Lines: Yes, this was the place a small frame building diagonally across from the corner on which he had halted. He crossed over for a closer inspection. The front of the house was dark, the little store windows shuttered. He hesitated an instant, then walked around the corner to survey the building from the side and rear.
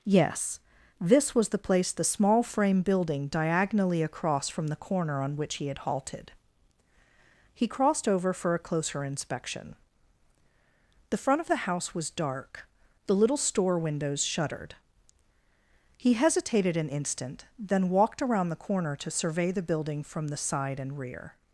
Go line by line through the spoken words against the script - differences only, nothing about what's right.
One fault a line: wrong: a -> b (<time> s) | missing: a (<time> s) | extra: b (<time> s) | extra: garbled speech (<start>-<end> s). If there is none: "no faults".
wrong: a -> the (1.9 s)